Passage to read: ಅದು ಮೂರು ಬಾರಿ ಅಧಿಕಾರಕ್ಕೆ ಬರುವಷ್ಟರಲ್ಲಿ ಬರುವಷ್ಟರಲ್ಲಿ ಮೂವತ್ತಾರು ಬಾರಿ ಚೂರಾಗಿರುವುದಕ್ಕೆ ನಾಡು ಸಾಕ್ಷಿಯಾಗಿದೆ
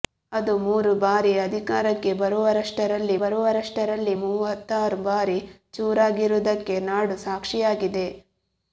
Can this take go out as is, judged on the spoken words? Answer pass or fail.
pass